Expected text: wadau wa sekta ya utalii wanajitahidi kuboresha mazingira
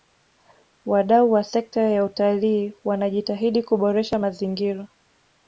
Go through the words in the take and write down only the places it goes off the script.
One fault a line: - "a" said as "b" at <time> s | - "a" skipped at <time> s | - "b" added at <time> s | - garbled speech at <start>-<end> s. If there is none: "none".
none